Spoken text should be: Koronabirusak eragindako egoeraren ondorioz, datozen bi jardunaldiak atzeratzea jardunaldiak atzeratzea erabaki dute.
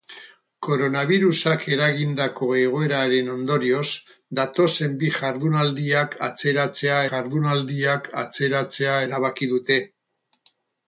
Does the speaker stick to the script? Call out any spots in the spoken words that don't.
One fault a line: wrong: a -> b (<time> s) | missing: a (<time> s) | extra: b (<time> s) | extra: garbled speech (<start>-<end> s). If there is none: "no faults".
no faults